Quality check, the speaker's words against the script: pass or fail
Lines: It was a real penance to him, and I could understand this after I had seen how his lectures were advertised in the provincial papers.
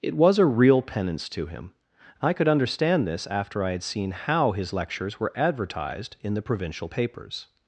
fail